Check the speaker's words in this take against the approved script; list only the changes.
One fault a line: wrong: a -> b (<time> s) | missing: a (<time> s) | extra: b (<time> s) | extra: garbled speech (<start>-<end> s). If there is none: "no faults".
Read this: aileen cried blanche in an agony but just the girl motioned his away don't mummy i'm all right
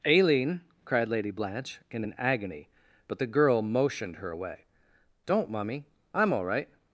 extra: lady (1.1 s)
missing: just (3.2 s)
wrong: his -> her (4.2 s)